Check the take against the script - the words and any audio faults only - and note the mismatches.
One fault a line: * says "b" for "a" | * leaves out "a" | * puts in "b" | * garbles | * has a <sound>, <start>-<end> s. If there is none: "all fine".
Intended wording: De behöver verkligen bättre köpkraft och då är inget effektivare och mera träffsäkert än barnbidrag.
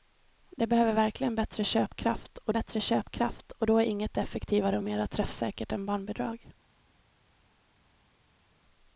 * puts in "bättre köpkraft och"